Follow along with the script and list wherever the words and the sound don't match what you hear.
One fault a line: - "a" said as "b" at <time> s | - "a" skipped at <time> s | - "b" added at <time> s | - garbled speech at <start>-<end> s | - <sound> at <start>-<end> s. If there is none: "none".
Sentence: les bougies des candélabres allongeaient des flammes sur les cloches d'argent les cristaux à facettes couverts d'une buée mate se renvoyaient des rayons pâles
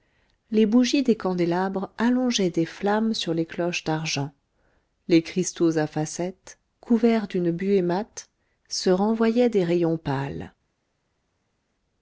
none